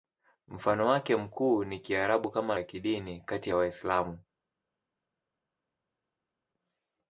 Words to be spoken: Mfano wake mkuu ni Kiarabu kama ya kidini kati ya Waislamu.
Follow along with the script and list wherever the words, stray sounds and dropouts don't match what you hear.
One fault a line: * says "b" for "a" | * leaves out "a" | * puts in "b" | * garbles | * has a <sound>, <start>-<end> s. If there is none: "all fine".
all fine